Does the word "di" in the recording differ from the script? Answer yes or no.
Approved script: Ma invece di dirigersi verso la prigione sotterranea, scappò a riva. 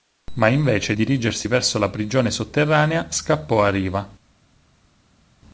yes